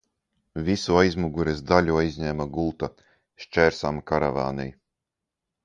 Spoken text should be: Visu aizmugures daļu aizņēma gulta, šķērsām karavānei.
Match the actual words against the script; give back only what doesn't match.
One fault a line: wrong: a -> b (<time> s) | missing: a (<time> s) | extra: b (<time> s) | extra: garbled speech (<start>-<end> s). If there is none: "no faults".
no faults